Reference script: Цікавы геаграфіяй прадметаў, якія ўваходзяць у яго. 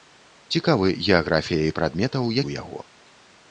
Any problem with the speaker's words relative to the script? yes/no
yes